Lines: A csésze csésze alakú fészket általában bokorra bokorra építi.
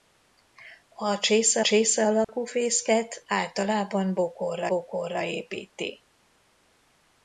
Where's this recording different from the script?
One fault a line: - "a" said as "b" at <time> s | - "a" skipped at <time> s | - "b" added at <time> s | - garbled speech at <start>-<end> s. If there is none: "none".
none